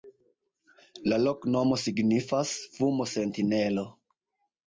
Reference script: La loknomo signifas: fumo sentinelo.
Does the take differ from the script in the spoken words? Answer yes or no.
no